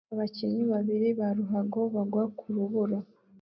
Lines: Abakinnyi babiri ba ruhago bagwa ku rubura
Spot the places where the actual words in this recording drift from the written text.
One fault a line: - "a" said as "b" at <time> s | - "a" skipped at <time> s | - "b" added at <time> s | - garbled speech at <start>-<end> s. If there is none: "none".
none